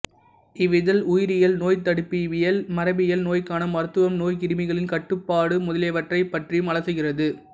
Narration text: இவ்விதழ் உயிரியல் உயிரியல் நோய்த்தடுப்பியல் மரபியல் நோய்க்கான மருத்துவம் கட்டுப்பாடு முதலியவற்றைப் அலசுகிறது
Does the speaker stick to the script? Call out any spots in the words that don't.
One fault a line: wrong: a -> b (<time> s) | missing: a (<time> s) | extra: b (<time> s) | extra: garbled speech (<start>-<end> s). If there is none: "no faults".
missing: உயிரியல் (1.6 s)
extra: நோய்க்கிருமிகளின் (4.2 s)
extra: பற்றியும் (6.3 s)